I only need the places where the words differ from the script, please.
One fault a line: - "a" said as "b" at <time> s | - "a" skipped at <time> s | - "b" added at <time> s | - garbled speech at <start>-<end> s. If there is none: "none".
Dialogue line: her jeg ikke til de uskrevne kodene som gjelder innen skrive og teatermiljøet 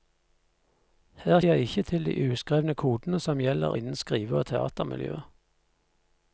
none